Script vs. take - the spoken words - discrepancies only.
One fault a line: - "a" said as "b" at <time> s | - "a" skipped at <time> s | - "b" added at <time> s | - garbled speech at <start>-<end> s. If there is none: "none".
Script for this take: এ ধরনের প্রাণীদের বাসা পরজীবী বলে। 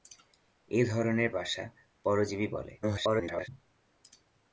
- "প্রাণীদের" skipped at 1.3 s
- garbled speech at 2.8-3.5 s